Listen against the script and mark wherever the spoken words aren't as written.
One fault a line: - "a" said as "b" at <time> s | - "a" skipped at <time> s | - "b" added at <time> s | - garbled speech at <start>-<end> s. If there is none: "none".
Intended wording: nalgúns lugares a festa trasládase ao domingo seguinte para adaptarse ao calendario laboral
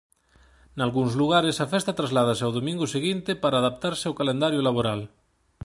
none